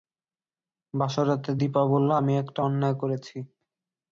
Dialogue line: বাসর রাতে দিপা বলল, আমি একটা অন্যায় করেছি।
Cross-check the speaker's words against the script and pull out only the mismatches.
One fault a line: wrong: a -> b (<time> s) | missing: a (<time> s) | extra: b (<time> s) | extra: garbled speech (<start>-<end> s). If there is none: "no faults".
no faults